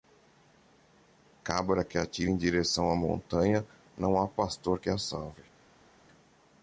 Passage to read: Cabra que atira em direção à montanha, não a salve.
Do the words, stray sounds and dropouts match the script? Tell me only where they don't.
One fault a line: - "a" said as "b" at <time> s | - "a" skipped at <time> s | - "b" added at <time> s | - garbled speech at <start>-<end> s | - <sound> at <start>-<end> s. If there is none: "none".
- "há pastor que" added at 4.2 s